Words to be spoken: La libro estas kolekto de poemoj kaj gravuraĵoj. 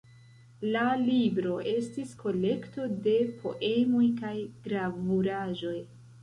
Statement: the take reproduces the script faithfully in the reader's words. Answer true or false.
false